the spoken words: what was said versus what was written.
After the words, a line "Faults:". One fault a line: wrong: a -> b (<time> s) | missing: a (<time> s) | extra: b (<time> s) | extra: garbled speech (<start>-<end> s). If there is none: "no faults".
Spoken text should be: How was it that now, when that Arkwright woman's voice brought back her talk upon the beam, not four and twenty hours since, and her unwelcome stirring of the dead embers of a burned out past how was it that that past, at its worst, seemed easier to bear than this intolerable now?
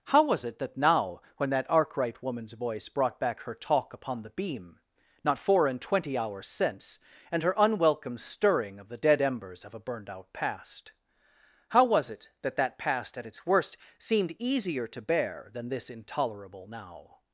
How was it that now, when that Arkwright woman's voice brought back her talk upon the beam, not four and twenty hours since, and her unwelcome stirring of the dead embers of a burned out past how was it that that past, at its worst, seemed easier to bear than this intolerable now?
Faults:
no faults